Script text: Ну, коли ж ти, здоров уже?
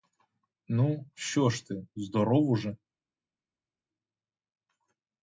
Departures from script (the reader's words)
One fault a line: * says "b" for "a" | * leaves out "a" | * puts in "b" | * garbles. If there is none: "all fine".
* says "що" for "коли"